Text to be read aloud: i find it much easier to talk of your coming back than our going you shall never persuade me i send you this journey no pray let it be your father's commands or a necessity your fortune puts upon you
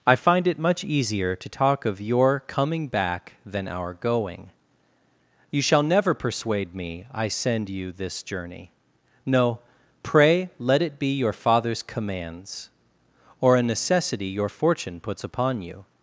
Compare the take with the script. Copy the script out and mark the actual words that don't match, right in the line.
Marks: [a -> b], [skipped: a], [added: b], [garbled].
i find it much easier to talk of your coming back than our going you shall never persuade me i send you this journey no pray let it be your father's commands or a necessity your fortune puts upon you